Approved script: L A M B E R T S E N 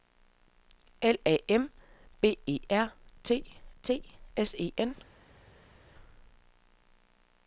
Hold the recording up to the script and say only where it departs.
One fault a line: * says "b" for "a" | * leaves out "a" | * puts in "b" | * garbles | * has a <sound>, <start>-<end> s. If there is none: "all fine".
* puts in "T"